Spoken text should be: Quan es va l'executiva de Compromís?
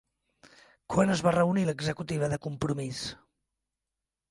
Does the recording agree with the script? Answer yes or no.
no